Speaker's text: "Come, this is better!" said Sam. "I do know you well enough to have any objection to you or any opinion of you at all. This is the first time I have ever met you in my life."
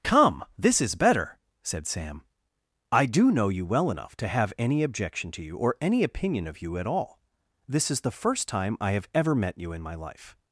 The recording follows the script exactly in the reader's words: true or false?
true